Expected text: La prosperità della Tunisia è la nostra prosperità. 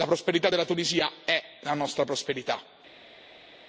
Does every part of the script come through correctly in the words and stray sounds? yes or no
yes